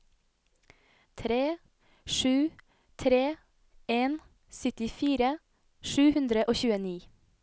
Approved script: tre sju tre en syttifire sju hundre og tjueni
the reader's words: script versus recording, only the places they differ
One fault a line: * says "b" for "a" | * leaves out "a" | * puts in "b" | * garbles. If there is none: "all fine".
all fine